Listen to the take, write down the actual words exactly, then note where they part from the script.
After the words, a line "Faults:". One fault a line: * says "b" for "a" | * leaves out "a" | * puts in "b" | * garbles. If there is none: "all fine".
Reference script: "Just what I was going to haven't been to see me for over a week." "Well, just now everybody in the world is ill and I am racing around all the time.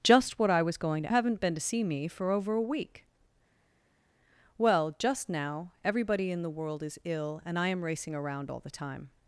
"Just what I was going to haven't been to see me for over a week." "Well, just now everybody in the world is ill and I am racing around all the time.
Faults:
all fine